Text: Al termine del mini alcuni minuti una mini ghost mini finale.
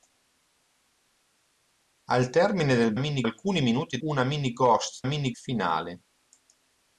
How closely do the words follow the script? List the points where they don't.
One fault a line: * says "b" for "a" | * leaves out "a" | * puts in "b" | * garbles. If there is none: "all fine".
all fine